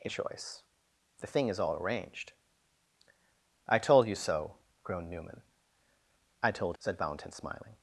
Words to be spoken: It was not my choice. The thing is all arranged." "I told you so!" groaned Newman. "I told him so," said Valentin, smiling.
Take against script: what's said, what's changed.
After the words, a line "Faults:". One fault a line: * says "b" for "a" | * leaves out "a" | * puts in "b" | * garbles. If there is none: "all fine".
It choice. The thing is all arranged." "I told you so!" groaned Newman. "I told," said Valentin, smiling.
Faults:
* leaves out "was not my"
* leaves out "him so"